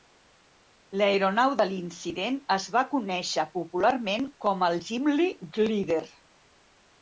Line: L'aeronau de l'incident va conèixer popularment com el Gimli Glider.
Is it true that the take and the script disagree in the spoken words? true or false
true